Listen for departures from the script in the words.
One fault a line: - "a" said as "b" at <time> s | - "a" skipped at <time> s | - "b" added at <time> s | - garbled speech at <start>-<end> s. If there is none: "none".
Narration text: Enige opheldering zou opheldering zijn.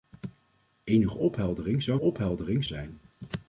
none